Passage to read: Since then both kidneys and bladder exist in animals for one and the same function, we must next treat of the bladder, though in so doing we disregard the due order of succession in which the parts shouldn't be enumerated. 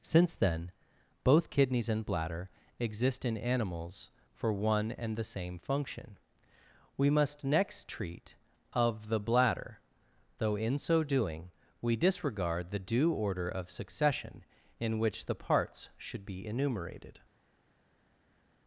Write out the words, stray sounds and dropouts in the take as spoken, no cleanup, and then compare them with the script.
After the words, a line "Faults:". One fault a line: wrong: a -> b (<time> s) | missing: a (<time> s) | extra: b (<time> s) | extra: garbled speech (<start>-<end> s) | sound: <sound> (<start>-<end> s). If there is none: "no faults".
Since then both kidneys and bladder exist in animals for one and the same function, we must next treat of the bladder, though in so doing we disregard the due order of succession in which the parts should be enumerated.
Faults:
wrong: shouldn't -> should (16.0 s)